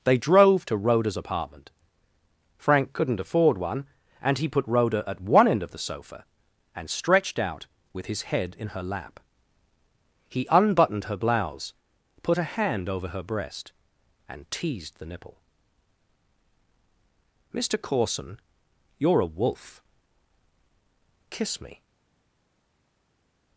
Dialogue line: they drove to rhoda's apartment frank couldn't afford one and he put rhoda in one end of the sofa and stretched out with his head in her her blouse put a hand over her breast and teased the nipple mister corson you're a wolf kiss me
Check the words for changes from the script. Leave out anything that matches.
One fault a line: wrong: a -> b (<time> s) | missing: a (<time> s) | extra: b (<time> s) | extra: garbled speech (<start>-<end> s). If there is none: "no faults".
wrong: in -> at (5.1 s)
extra: lap he unbuttoned (8.8 s)